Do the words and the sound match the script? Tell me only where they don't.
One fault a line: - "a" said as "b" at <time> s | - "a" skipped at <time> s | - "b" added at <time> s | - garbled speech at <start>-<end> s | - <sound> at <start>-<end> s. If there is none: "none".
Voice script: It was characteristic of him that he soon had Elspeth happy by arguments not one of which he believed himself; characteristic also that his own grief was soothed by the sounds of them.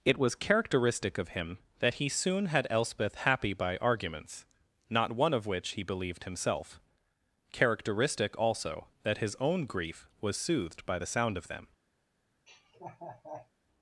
- "sounds" said as "sound" at 11.0 s
- laugh at 12.5-13.5 s